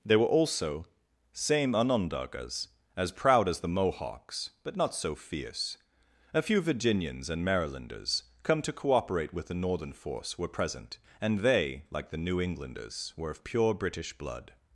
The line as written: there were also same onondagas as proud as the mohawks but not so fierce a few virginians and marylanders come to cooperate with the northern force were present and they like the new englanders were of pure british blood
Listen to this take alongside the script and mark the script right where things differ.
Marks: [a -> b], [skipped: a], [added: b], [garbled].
there were also same onondagas as proud as the mohawks but not so fierce a few virginians and marylanders come to cooperate with the northern force were present and they like the new englanders were of pure british blood